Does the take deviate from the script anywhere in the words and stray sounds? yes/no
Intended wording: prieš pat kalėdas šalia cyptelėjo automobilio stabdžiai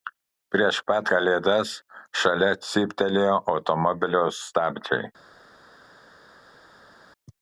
no